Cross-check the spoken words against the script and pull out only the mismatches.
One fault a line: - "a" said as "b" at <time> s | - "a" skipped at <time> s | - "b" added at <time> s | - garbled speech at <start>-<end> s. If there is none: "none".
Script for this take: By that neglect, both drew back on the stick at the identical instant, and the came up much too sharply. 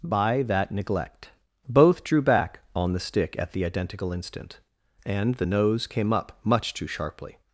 - "nose" added at 5.4 s